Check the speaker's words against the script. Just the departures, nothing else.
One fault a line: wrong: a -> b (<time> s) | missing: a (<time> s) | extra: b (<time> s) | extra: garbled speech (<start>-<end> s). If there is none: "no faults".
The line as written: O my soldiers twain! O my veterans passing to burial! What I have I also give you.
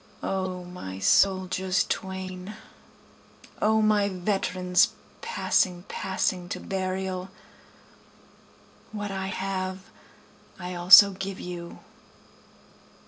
extra: passing (5.9 s)